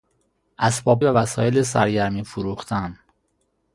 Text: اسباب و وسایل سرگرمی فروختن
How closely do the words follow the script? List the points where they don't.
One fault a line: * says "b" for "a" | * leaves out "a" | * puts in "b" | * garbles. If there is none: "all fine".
all fine